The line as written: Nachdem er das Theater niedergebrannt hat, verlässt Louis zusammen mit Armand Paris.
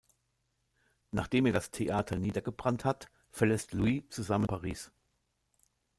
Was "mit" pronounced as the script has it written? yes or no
no